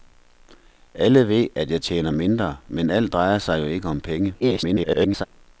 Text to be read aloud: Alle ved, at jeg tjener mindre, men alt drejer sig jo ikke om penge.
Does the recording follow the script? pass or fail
fail